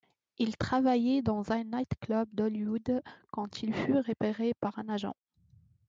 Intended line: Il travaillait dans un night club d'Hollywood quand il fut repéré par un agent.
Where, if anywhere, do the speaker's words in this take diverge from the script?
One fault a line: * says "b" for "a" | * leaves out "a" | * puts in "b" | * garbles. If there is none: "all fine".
all fine